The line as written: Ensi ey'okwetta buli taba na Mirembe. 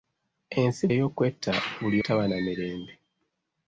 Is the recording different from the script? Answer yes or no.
no